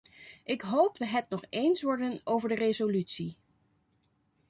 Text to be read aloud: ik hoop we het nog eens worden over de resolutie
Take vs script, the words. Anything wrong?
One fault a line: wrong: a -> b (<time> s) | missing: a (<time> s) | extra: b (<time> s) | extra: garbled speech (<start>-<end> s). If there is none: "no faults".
no faults